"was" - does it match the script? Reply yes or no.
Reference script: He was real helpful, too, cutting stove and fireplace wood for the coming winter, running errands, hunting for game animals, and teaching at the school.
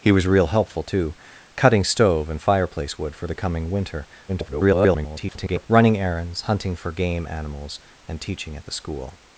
yes